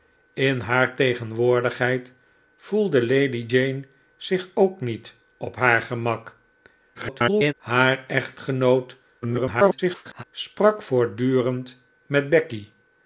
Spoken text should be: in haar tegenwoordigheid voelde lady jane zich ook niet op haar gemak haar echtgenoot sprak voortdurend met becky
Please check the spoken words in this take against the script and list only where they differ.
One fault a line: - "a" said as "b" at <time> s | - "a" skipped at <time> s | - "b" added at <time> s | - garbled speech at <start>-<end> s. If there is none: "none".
- garbled speech at 6.9-7.5 s
- garbled speech at 9.2-10.2 s